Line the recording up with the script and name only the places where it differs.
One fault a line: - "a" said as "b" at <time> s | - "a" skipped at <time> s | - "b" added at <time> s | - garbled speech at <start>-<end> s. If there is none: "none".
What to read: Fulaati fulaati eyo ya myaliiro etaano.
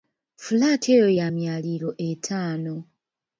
- "fulaati" skipped at 0.9 s